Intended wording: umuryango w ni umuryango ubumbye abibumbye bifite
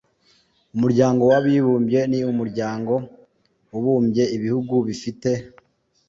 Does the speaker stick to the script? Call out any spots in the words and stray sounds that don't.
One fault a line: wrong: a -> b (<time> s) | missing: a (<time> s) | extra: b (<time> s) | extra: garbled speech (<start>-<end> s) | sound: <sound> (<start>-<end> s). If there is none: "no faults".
extra: abibumbye (1.4 s)
wrong: abibumbye -> ibihugu (4.4 s)